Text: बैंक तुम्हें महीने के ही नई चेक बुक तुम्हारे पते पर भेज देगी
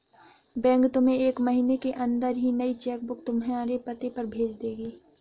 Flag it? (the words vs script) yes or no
yes